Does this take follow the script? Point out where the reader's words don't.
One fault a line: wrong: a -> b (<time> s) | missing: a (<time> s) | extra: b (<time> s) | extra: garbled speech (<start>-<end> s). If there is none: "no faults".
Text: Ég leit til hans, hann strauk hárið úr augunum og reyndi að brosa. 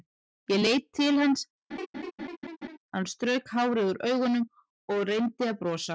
no faults